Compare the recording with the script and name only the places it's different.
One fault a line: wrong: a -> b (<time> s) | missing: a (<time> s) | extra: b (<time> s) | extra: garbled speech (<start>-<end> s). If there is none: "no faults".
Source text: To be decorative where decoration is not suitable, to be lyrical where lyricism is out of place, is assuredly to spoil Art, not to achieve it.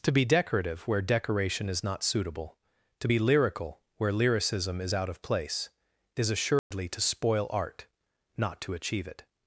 no faults